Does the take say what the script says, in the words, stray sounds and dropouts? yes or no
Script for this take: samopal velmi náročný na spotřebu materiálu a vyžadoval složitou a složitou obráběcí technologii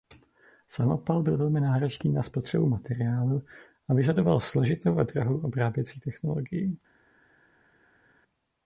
no